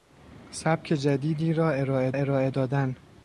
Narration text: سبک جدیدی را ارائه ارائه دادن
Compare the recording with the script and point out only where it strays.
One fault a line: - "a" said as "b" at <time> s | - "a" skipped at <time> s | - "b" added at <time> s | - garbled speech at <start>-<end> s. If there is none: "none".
none